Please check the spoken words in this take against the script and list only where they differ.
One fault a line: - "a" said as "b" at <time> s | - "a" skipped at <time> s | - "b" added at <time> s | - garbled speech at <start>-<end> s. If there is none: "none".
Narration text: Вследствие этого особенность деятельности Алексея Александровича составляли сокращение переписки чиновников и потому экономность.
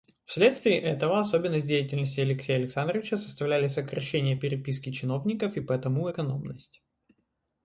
none